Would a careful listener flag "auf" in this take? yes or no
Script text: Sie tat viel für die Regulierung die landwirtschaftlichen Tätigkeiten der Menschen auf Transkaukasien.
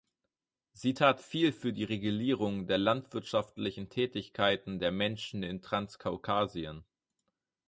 yes